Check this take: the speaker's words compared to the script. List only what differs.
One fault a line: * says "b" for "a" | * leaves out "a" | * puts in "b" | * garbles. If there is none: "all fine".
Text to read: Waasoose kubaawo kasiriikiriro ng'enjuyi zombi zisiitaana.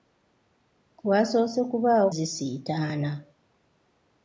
* leaves out "kasiriikiriro ng'enjuyi zombi"